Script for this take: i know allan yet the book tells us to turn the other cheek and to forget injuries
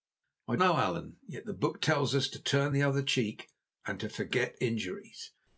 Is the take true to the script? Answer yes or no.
yes